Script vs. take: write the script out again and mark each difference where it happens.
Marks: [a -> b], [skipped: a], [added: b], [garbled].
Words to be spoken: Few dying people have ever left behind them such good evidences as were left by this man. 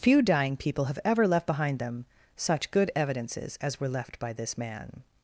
Few dying people have ever left behind them such good evidences as were left by this man.